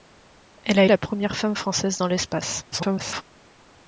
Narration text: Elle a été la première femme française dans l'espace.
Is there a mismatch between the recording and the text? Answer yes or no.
yes